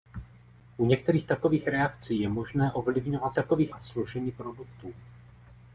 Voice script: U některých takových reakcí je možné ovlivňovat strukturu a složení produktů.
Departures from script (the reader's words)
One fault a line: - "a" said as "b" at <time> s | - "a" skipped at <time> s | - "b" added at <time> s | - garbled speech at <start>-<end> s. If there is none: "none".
- "strukturu" said as "takových" at 3.3 s